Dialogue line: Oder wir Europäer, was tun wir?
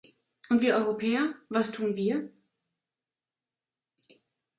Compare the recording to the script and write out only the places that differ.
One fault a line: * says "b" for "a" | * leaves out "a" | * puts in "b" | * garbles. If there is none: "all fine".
* says "Und" for "Oder"